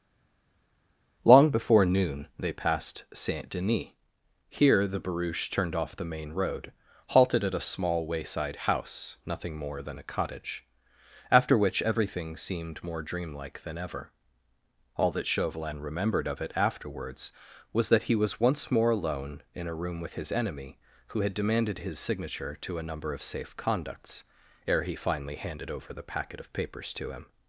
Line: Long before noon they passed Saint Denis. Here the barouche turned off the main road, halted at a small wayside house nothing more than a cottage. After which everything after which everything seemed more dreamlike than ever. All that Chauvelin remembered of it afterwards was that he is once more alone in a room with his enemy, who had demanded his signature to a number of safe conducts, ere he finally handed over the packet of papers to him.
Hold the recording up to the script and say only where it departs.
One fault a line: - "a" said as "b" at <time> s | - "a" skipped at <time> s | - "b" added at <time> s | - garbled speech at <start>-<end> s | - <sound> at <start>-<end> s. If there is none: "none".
- "after which everything" skipped at 12.4 s
- "is" said as "was" at 18.2 s